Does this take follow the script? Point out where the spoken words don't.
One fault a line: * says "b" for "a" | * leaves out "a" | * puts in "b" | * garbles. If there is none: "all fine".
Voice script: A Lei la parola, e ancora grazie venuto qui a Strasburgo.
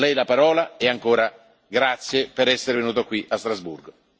* puts in "per essere"